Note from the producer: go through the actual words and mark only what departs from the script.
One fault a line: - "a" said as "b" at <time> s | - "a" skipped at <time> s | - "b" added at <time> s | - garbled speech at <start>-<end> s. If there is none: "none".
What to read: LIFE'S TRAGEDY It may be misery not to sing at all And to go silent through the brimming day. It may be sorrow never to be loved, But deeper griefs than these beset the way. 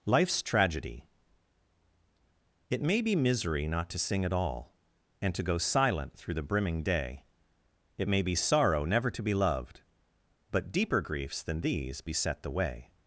none